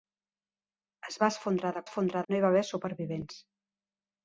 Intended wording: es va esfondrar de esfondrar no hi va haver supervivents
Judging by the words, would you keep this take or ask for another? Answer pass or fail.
pass